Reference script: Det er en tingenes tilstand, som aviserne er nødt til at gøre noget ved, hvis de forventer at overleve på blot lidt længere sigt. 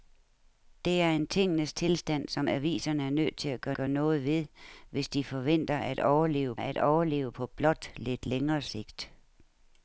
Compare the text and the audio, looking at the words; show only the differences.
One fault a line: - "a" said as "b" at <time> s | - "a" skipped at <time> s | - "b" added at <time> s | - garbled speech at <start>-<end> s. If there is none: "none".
- "gøre" added at 3.7 s
- "at overleve" added at 6.6 s